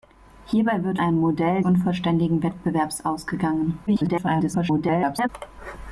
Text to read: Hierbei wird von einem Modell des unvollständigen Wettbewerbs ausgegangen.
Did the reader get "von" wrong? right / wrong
wrong